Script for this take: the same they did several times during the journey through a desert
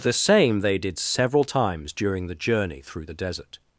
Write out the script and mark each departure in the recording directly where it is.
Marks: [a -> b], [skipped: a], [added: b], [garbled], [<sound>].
the same they did several times during the journey through [a -> the] desert